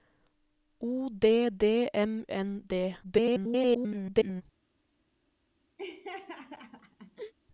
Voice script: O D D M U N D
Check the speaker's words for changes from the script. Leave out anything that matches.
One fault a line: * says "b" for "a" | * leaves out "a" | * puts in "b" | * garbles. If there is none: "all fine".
* leaves out "U"
* garbles